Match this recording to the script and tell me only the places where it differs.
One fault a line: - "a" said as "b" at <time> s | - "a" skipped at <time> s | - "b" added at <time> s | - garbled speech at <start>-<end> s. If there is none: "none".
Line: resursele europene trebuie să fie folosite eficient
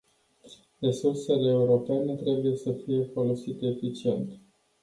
none